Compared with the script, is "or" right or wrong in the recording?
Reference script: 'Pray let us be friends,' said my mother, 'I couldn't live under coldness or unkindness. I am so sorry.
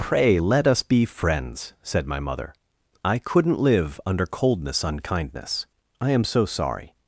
wrong